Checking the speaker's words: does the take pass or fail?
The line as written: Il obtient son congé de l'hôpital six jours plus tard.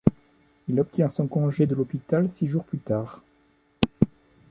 pass